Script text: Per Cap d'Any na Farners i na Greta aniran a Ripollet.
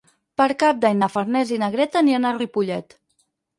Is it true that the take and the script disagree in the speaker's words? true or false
false